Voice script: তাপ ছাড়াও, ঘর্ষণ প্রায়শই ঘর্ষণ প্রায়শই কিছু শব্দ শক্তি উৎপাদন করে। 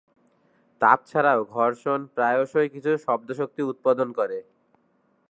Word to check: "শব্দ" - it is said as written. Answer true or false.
true